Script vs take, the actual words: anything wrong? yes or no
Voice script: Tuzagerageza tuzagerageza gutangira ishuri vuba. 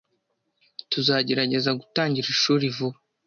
yes